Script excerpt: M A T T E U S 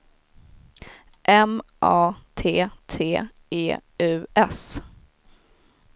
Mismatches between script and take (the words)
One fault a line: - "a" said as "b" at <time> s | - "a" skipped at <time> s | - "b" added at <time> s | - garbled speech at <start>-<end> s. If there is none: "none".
none